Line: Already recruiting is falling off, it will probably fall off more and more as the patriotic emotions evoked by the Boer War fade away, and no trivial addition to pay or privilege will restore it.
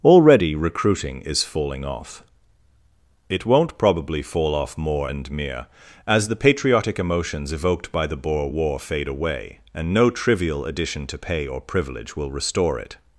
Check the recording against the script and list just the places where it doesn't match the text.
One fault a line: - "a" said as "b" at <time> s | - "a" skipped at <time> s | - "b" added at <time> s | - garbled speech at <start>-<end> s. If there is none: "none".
- "will" said as "won't" at 3.5 s
- "more" said as "mere" at 5.3 s